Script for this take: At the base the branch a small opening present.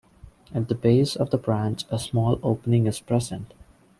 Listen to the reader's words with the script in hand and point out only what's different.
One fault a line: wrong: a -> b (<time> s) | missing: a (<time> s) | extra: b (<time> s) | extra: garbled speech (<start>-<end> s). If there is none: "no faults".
extra: of (1.1 s)
extra: is (2.9 s)